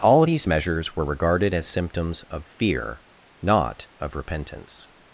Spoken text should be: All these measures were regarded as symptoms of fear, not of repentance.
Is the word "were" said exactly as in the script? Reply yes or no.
yes